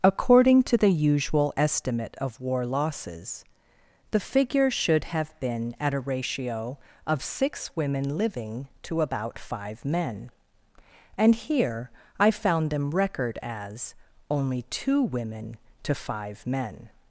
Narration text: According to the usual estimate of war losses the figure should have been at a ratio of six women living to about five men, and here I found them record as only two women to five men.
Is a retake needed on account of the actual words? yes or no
no